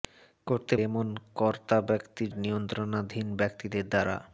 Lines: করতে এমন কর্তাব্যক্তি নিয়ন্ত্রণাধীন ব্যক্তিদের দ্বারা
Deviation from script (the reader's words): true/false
false